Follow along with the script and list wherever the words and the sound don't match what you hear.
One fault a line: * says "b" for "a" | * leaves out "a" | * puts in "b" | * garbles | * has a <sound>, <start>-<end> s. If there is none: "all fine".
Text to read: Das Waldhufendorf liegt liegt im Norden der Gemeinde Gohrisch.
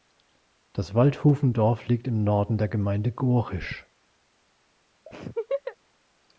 * leaves out "liegt"
* has a laugh, 5.1-5.8 s